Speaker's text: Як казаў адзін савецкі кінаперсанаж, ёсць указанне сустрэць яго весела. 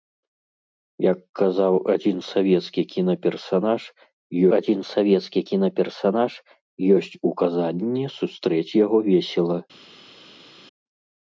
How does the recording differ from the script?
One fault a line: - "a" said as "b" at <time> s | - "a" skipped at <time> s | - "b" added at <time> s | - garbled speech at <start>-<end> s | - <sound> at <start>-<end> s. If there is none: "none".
- "адзін савецкі кінаперсанаж" added at 4.6 s